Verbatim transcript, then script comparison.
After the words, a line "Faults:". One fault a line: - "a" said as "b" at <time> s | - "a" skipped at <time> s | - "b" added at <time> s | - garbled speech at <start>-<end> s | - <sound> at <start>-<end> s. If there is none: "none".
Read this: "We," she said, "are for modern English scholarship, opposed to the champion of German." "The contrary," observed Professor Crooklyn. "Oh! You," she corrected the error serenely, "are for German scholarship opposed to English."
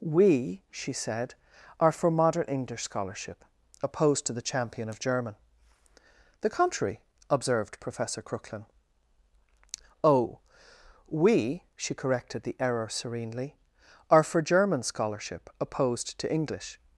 "We," she said, "are for modern English scholarship, opposed to the champion of German." "The contrary," observed Professor Crooklyn. "Oh! We," she corrected the error serenely, "are for German scholarship opposed to English."
Faults:
- "You" said as "We" at 11.1 s